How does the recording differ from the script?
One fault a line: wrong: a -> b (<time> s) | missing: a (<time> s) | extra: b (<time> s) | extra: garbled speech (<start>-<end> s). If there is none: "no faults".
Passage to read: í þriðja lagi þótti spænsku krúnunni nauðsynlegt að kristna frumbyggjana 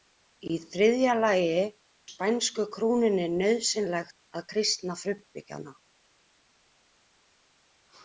missing: þótti (1.6 s)